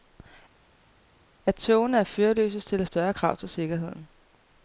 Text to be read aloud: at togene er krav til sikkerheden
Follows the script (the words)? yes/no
no